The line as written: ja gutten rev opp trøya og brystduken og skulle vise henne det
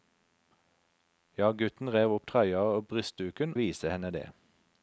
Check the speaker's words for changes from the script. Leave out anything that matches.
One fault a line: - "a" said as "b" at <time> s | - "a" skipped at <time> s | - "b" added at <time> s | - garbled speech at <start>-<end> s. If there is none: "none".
- "og skulle" skipped at 3.5 s